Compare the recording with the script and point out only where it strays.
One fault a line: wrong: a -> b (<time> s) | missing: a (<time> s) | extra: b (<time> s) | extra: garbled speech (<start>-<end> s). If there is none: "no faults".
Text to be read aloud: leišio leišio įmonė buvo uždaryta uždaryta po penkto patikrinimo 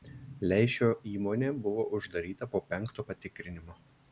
missing: leišio (0.9 s)
missing: uždaryta (2.5 s)